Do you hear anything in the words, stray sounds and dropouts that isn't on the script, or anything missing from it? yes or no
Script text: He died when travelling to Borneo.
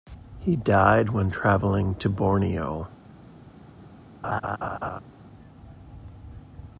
yes